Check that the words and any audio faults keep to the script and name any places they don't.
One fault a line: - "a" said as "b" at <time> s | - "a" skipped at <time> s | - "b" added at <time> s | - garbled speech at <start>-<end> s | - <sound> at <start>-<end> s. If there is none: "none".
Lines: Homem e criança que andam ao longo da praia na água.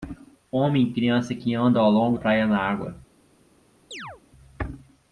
- "da" skipped at 2.2 s
- chirp at 3.9-4.2 s